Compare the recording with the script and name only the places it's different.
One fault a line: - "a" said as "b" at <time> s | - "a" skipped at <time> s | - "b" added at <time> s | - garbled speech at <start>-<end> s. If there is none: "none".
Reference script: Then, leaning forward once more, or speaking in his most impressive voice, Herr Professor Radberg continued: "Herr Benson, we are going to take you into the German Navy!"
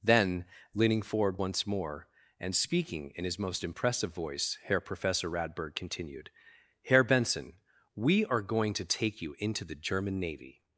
- "or" said as "and" at 2.4 s